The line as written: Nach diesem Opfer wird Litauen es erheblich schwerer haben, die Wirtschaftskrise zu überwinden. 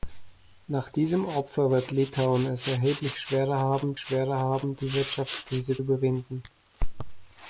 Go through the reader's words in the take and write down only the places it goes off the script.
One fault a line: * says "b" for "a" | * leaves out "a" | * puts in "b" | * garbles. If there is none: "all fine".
* puts in "schwerer haben"
* leaves out "zu"